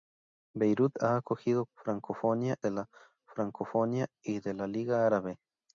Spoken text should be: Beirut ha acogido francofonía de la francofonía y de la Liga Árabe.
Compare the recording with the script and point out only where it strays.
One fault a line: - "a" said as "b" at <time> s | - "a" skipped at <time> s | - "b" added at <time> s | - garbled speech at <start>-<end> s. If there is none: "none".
none